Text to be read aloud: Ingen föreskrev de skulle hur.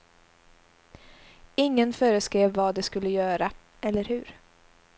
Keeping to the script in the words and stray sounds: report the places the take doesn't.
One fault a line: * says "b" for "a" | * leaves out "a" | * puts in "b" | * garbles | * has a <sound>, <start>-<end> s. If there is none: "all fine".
* puts in "vad"
* puts in "göra eller"